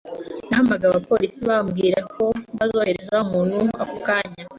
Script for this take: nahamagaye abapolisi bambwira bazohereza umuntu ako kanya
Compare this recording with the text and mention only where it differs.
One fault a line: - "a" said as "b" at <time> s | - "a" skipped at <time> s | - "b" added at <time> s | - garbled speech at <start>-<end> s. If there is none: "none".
- "ko" added at 2.1 s